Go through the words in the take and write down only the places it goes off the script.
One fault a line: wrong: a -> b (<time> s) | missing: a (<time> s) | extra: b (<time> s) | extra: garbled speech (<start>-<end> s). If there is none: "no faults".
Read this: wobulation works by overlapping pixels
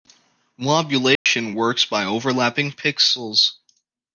no faults